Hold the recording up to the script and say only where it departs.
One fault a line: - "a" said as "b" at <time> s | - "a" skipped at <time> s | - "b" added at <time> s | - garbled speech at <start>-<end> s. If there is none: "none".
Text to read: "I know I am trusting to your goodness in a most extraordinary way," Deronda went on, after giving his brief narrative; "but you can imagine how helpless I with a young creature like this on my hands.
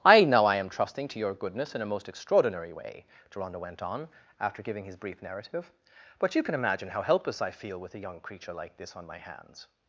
- "feel" added at 7.5 s